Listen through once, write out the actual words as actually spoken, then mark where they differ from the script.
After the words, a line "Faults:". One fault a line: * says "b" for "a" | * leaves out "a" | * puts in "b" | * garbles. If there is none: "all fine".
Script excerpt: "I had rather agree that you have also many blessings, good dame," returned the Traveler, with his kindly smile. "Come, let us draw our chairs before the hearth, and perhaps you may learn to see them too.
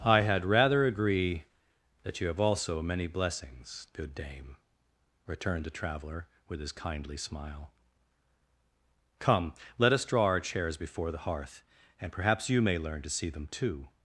"I had rather agree that you have also many blessings, good dame," returned the Traveler, with his kindly smile. "Come, let us draw our chairs before the hearth, and perhaps you may learn to see them too.
Faults:
all fine